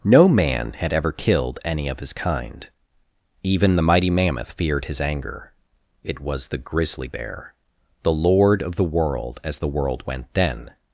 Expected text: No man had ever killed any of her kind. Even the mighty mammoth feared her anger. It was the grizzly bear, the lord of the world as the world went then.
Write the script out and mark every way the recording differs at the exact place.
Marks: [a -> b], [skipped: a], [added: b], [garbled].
No man had ever killed any of [her -> his] kind. Even the mighty mammoth feared [her -> his] anger. It was the grizzly bear, the lord of the world as the world went then.